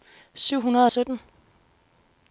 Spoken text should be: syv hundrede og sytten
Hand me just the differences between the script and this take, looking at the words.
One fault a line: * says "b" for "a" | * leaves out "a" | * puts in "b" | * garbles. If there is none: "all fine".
all fine